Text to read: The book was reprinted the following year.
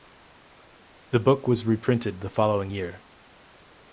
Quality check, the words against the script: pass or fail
pass